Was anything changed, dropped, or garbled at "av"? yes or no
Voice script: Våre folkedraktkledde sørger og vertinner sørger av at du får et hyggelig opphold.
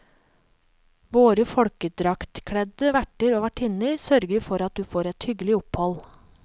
yes